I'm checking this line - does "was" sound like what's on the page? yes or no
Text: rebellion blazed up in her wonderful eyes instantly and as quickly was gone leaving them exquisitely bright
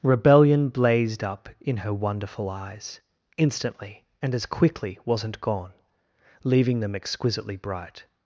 no